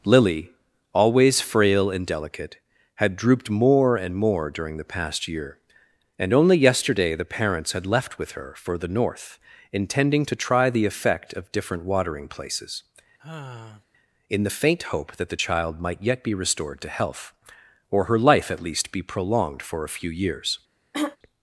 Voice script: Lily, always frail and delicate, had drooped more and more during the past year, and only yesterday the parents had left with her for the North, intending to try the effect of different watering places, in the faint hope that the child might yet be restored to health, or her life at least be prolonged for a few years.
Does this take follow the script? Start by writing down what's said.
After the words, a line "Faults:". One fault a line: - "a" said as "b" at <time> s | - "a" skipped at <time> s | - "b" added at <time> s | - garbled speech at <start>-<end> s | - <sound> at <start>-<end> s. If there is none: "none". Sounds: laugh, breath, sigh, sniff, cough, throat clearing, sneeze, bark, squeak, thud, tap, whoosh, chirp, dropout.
Lily, always frail and delicate, had drooped more and more during the past year, and only yesterday the parents had left with her for the North, intending to try the effect of different watering places, in the faint hope that the child might yet be restored to health, or her life at least be prolonged for a few years.
Faults:
- sigh at 13.2-13.8 s
- throat clearing at 20.9-21.2 s